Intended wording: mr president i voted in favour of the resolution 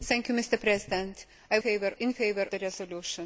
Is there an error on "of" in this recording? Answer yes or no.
yes